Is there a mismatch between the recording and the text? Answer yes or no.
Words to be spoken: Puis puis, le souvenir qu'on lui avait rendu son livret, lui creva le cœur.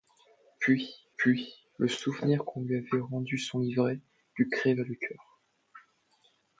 no